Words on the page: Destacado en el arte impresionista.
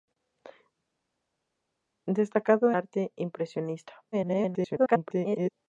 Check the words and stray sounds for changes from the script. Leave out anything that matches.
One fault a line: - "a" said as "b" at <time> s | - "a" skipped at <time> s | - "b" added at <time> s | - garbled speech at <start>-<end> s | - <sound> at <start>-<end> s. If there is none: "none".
- "en el" skipped at 2.7 s
- garbled speech at 4.1-5.5 s